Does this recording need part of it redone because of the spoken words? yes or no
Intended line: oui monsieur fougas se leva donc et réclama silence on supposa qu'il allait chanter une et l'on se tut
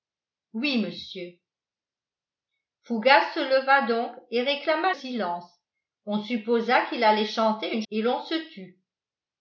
no